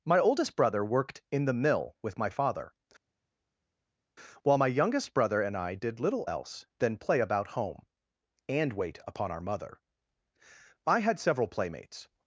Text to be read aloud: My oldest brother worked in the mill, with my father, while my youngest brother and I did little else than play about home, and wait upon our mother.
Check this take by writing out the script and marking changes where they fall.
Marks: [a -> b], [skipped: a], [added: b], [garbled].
My oldest brother worked in the mill, with my father, while my youngest brother and I did little else than play about home, and wait upon our mother. [added: I had several playmates]